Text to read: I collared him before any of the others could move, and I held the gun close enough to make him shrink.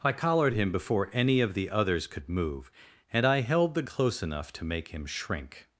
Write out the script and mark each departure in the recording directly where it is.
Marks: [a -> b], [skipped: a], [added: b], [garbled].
I collared him before any of the others could move, and I held the [skipped: gun] close enough to make him shrink.